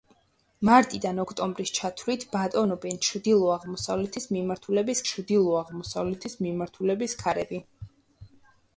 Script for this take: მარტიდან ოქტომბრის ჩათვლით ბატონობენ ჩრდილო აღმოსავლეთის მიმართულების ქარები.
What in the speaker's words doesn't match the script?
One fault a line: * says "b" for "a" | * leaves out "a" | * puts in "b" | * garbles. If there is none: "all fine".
* puts in "ჩრდილო აღმოსავლეთის მიმართულების"